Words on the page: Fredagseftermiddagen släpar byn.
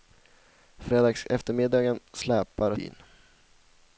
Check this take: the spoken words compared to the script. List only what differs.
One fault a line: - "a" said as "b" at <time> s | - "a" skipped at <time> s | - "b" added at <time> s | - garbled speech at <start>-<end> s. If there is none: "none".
none